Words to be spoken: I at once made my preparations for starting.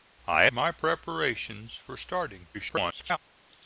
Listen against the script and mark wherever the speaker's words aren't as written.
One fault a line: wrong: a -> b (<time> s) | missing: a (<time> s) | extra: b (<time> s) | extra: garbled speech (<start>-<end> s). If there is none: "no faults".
missing: at once made (0.5 s)
extra: garbled speech (2.5-3.2 s)